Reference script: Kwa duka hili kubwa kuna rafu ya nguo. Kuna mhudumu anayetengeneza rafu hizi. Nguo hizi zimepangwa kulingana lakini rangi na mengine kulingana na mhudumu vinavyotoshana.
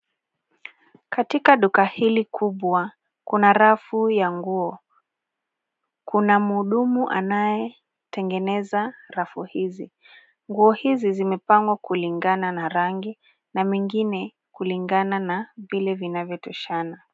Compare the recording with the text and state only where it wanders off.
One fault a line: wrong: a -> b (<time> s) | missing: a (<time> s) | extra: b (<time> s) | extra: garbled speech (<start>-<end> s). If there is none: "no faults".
wrong: Kwa -> Katika (1.1 s)
wrong: lakini -> na (12.5 s)
wrong: mhudumu -> vile (15.6 s)